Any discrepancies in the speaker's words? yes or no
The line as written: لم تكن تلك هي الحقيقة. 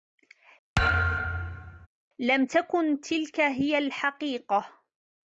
no